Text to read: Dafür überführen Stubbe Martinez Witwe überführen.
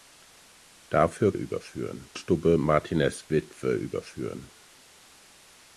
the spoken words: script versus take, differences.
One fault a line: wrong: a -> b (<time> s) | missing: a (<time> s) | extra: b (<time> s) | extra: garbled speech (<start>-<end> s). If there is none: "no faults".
no faults